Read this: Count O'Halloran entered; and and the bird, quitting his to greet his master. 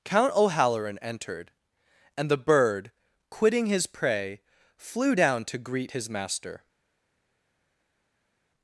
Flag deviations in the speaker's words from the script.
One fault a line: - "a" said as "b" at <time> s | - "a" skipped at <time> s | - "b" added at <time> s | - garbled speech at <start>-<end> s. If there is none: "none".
- "and" skipped at 2.3 s
- "prey flew down" added at 3.9 s